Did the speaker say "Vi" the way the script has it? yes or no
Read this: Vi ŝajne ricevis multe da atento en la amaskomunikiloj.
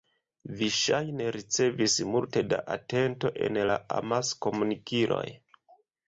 yes